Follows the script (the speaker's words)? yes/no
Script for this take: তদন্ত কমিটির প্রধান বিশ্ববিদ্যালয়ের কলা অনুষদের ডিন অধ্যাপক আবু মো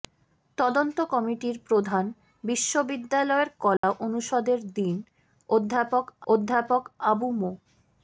no